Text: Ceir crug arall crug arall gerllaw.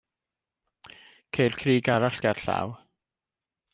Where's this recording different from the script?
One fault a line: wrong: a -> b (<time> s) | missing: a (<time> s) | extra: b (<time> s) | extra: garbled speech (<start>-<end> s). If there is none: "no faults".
missing: crug arall (2.2 s)